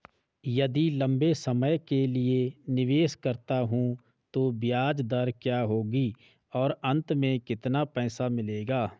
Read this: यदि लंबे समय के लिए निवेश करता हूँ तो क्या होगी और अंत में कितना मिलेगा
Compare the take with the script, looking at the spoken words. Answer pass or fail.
fail